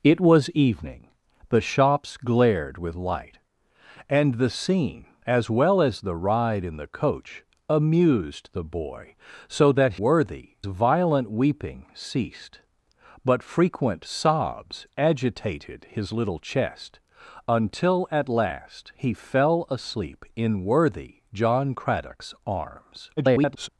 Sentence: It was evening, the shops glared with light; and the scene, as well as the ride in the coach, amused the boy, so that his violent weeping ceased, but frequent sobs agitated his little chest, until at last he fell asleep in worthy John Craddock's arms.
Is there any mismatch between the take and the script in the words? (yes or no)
yes